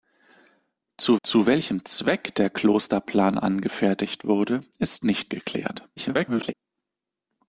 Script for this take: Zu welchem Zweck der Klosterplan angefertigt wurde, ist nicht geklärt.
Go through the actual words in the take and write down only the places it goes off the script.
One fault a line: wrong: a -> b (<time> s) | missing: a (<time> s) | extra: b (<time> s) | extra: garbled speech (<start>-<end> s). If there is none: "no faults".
extra: zu (1.2 s)
extra: garbled speech (6.0-6.5 s)